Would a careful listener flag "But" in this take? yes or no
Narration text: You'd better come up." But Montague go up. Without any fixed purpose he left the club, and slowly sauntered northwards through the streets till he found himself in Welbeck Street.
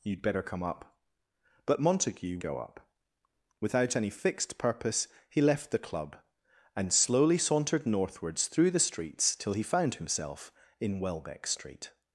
no